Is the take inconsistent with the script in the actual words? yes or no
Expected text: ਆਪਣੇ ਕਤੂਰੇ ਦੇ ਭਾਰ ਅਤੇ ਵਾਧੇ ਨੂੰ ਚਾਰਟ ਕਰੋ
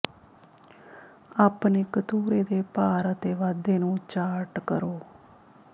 no